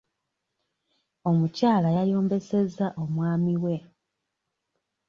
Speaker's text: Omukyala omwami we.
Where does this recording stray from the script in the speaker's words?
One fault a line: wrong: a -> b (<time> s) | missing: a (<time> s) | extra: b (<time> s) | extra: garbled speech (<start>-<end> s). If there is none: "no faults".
extra: yayombesezza (2.0 s)